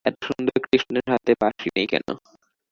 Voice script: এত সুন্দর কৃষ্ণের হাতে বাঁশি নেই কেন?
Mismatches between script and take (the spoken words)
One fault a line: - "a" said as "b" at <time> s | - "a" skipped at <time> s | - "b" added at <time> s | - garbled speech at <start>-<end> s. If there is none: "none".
none